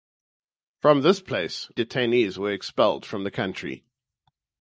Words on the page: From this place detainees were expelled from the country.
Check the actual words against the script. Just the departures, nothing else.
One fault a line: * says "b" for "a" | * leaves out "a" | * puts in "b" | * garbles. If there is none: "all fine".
all fine